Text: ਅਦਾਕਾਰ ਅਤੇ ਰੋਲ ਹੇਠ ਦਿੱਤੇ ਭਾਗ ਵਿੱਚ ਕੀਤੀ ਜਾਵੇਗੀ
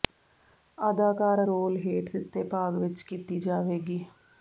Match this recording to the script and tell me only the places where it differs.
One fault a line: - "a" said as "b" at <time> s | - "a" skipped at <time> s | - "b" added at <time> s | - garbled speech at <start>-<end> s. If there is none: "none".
- "ਅਤੇ" skipped at 1.4 s